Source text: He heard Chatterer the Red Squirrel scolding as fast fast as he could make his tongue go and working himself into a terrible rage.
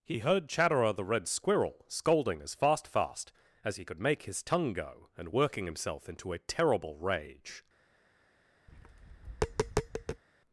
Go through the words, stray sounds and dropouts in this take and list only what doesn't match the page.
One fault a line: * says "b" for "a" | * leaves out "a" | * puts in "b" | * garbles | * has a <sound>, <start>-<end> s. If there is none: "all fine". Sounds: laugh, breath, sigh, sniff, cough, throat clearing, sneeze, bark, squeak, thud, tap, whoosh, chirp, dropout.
* has a tap, 8.7-10.2 s